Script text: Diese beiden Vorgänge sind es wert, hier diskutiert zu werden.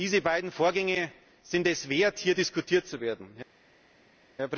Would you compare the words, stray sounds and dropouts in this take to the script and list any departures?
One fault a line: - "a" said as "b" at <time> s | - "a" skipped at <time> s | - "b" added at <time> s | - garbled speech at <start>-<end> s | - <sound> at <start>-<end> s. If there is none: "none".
none